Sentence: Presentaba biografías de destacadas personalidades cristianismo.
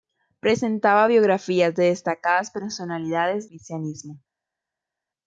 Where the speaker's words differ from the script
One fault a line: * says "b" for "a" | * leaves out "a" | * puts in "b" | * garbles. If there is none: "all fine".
all fine